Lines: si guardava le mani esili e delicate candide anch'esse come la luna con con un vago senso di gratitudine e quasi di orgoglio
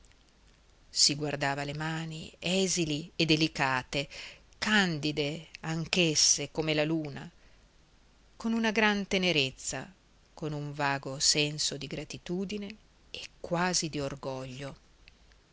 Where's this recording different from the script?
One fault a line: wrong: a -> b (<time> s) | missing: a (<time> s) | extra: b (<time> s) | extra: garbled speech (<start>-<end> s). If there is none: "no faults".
extra: una gran tenerezza (8.5 s)